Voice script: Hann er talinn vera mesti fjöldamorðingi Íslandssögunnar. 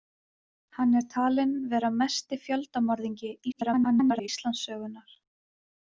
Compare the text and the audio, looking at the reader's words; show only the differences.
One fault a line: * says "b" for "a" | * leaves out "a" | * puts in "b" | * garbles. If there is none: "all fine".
* garbles